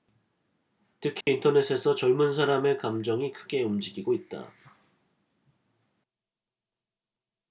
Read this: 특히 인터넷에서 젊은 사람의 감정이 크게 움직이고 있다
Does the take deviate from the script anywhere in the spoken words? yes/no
no